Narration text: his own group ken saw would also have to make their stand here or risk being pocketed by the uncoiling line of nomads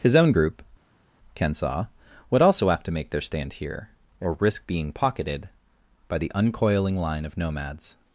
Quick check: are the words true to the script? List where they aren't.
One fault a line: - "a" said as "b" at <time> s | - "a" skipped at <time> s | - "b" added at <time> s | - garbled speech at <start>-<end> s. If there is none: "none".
none